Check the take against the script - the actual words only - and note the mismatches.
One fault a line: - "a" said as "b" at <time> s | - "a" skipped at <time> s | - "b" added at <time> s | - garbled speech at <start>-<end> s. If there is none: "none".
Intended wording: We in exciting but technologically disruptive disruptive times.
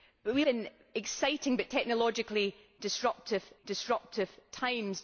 none